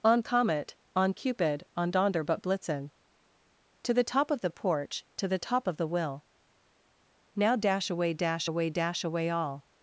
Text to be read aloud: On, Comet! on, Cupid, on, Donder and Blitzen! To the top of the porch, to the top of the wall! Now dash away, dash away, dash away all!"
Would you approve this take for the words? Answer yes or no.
no